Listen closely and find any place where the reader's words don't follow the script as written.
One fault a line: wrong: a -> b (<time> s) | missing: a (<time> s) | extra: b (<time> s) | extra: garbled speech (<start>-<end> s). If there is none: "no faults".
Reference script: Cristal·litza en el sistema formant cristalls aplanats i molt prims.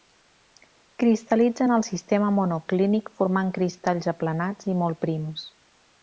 extra: monoclínic (2.4 s)